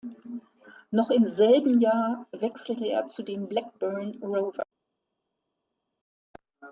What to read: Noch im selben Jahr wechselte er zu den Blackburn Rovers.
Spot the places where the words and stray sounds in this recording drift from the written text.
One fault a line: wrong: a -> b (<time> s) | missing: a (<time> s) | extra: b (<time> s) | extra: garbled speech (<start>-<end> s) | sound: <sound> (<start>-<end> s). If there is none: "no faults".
no faults